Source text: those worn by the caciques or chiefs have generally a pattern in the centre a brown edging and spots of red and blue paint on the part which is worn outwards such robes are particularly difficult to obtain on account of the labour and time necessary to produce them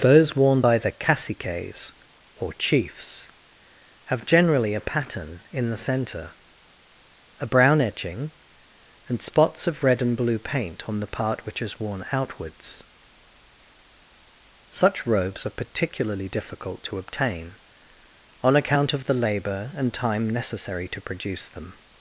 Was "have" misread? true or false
false